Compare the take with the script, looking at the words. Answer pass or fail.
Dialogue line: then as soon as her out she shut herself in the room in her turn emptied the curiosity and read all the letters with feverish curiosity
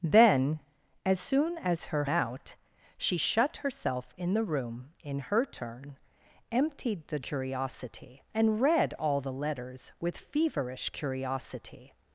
pass